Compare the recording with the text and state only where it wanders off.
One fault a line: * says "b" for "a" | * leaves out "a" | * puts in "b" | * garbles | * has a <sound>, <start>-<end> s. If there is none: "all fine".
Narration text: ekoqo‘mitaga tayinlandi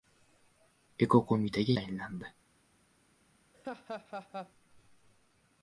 * has a laugh, 3.5-4.5 s